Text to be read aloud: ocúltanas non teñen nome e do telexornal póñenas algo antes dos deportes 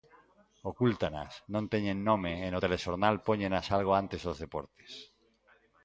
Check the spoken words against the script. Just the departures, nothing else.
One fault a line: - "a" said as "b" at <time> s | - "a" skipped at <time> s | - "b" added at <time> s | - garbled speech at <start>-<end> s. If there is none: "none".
- "do" said as "no" at 2.5 s